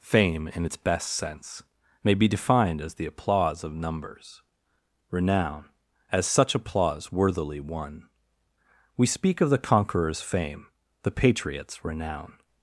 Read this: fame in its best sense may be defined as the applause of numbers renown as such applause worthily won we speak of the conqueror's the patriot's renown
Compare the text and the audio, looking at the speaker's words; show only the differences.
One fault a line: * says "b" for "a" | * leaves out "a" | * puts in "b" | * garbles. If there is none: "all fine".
* puts in "fame"